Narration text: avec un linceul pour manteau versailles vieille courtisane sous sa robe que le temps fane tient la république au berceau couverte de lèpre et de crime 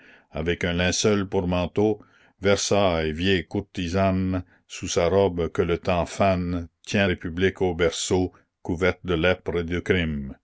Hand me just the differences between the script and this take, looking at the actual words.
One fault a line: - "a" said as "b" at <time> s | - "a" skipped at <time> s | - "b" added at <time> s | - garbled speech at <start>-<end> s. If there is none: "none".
- "la" skipped at 7.1 s